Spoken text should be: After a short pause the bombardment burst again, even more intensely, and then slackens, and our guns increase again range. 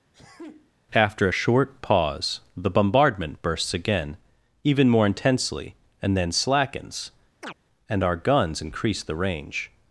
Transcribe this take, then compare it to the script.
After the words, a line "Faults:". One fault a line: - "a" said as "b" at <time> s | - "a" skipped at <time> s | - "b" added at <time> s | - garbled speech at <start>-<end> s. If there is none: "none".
After a short pause the bombardment bursts again, even more intensely, and then slackens, and our guns increase the range.
Faults:
- "burst" said as "bursts" at 3.4 s
- "again" said as "the" at 9.0 s